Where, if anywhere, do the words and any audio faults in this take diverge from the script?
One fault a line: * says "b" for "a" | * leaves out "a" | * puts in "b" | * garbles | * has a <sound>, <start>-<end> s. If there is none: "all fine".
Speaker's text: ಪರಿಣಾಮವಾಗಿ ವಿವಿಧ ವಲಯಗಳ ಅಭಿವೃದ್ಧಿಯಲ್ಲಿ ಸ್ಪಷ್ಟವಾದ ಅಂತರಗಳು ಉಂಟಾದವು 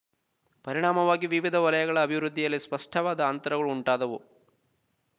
all fine